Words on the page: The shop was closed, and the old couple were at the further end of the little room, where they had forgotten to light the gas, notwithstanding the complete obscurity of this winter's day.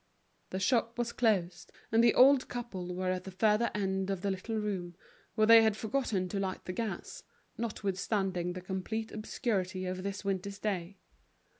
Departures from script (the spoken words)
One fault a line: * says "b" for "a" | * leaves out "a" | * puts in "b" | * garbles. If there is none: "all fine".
all fine